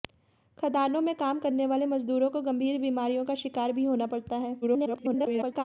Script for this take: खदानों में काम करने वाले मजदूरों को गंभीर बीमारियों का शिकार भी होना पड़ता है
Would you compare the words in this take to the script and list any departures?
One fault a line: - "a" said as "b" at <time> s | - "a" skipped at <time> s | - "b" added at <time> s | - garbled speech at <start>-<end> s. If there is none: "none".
- garbled speech at 4.6-5.6 s